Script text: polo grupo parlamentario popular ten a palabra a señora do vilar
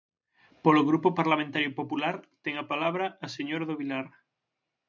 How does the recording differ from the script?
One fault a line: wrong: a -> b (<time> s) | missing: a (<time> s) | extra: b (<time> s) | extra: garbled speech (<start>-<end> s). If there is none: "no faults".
no faults